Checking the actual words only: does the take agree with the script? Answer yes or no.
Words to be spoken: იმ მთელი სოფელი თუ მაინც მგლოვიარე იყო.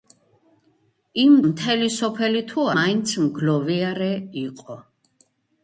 yes